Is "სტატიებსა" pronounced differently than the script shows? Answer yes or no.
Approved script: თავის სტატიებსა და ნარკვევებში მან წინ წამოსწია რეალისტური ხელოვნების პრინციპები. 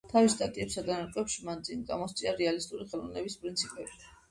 no